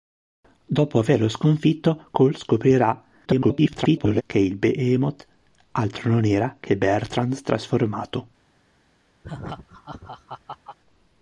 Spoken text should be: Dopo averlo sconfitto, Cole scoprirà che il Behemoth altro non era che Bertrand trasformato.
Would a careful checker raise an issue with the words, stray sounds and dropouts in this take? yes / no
yes